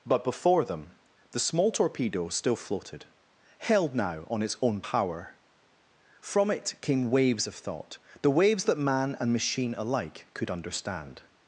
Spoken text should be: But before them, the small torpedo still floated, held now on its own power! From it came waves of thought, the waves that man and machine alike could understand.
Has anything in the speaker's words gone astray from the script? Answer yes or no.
no